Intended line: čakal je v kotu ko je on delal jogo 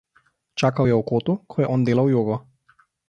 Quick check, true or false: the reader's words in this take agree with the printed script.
true